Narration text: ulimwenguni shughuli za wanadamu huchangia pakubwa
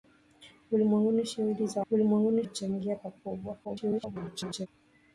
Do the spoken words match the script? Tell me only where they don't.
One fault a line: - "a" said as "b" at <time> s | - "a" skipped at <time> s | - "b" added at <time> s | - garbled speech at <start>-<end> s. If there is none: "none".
- "wanadamu" said as "ulimwenguni" at 1.9 s
- garbled speech at 3.6-4.7 s